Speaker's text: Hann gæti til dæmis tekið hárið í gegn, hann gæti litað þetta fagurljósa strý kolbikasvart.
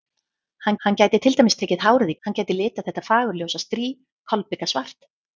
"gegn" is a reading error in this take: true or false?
true